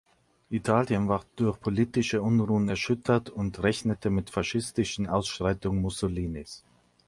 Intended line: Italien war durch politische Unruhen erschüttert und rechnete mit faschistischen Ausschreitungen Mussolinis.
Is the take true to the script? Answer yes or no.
yes